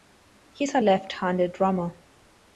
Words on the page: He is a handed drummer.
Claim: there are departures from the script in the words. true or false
true